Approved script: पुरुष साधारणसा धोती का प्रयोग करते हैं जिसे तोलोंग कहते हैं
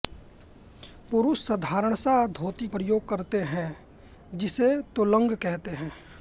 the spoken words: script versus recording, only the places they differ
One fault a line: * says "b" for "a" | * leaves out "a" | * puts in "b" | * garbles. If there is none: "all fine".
* leaves out "का"